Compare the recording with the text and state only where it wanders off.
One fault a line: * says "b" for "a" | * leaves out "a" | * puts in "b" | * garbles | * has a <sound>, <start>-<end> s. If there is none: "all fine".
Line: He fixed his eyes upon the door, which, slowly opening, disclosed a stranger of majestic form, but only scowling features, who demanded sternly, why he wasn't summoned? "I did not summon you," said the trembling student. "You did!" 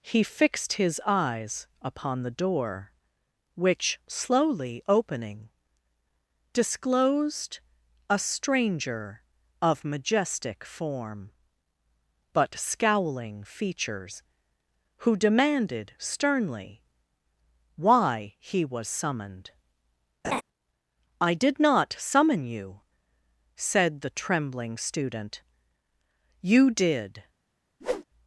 * leaves out "only"
* says "was" for "wasn't"
* has a laugh, 20.2-20.4 s
* has a whoosh, 27.8-28.0 s